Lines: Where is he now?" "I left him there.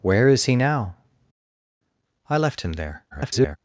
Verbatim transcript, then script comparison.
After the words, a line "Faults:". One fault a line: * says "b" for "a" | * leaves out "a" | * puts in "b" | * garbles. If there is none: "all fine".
Where is he now?" "I left him there. [garbled]
Faults:
* garbles